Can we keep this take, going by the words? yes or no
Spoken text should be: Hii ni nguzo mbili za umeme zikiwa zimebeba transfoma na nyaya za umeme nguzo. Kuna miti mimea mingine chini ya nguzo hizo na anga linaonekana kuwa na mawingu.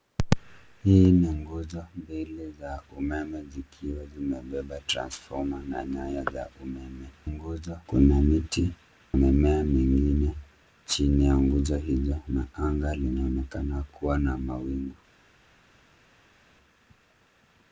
yes